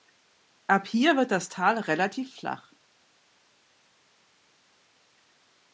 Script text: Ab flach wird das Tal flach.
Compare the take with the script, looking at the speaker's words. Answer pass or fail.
fail